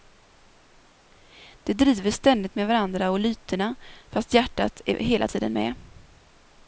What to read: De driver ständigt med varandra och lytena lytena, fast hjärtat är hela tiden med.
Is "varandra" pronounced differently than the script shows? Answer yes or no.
no